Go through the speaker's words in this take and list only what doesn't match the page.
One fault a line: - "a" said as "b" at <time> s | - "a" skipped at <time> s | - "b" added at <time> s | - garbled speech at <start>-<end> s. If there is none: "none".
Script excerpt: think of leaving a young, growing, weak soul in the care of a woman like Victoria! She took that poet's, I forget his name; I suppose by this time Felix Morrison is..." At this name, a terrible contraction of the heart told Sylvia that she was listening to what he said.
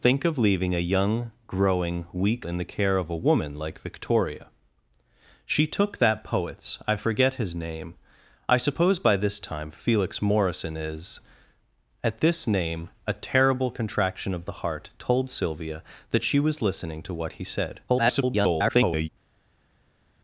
- "soul" skipped at 2.5 s
- garbled speech at 17.9-19.1 s